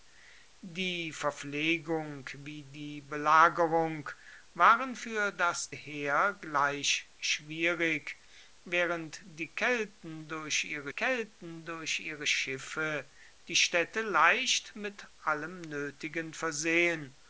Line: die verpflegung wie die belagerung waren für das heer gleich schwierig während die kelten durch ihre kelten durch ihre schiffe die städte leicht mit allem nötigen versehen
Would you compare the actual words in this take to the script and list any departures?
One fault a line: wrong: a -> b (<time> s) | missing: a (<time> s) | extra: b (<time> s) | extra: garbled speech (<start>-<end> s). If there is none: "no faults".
no faults